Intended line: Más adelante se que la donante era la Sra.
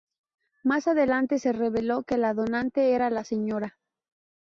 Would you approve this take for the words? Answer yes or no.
no